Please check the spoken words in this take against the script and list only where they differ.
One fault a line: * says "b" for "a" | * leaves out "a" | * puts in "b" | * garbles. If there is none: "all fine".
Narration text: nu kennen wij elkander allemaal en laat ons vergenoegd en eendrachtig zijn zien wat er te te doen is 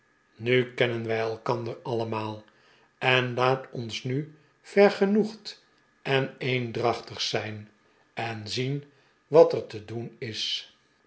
* puts in "nu"
* puts in "en"
* leaves out "te"